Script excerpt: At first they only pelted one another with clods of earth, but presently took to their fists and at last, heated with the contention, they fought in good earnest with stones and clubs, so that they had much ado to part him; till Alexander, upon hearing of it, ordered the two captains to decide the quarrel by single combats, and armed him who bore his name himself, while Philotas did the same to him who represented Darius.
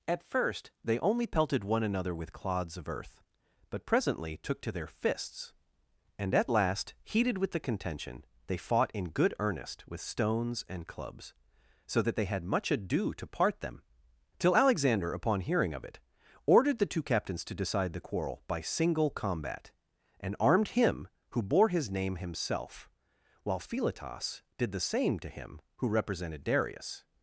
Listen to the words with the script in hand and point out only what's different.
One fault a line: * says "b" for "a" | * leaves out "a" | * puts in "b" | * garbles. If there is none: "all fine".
* says "them" for "him"
* says "combat" for "combats"